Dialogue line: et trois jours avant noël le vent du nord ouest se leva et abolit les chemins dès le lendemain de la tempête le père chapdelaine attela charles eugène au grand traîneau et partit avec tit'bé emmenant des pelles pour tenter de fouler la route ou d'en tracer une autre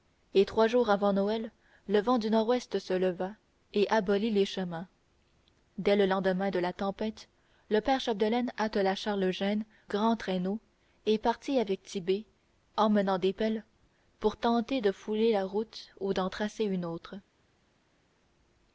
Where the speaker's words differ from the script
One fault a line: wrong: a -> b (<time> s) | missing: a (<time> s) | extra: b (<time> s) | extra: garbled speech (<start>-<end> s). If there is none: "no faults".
missing: au (9.6 s)